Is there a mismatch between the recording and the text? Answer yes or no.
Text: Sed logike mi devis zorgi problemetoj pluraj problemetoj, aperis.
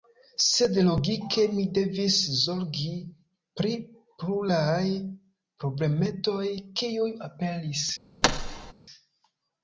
yes